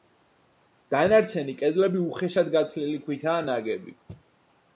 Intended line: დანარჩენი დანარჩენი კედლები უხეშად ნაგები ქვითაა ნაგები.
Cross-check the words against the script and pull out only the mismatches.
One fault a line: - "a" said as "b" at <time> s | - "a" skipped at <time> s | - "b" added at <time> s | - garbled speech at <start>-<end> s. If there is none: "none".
- "დანარჩენი" skipped at 1.6 s
- "ნაგები" said as "გათლილი" at 2.6 s